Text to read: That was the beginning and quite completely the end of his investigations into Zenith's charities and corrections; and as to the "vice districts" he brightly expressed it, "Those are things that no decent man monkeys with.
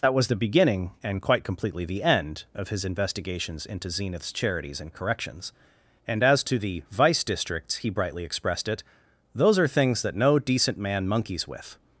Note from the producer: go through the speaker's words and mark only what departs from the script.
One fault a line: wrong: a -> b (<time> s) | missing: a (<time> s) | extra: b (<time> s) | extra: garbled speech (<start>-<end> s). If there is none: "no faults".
no faults